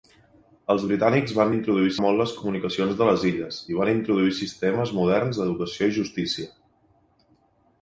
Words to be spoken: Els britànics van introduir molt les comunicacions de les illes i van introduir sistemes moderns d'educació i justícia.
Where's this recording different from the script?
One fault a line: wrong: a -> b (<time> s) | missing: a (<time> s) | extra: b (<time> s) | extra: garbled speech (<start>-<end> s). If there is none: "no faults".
no faults